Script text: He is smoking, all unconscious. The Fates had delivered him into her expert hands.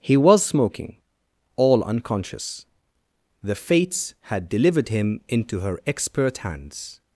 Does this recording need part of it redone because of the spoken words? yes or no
yes